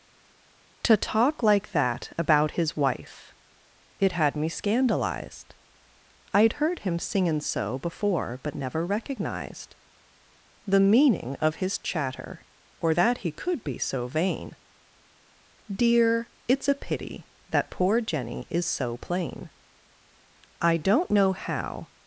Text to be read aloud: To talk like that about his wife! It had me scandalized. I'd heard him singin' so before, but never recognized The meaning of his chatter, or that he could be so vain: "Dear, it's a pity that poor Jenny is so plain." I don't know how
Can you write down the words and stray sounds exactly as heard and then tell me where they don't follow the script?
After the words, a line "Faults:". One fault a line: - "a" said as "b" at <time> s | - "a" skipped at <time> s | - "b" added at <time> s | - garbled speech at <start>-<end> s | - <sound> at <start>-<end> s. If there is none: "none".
To talk like that about his wife! It had me scandalized. I'd heard him singin' so before, but never recognized The meaning of his chatter, or that he could be so vain: "Dear, it's a pity that poor Jenny is so plain." I don't know how
Faults:
none